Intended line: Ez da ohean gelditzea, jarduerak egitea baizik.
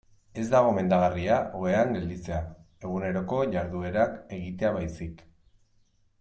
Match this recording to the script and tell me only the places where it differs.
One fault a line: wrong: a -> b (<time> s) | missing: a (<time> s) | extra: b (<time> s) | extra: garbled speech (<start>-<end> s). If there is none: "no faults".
extra: gomendagarria (0.7 s)
extra: eguneroko (2.9 s)